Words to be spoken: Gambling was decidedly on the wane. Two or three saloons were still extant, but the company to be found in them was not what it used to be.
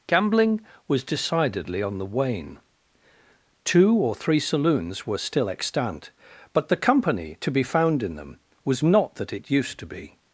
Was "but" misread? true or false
false